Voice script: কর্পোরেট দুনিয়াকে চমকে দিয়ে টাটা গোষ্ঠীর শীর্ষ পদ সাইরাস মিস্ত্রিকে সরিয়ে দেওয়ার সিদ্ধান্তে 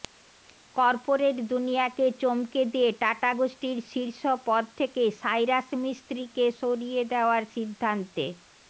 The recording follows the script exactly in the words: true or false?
false